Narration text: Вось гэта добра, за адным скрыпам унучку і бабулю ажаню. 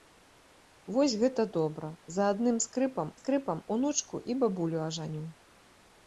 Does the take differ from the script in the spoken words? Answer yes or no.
yes